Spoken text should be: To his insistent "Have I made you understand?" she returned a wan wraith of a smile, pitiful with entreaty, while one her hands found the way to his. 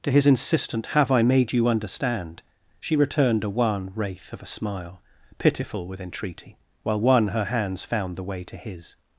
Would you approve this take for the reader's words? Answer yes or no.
yes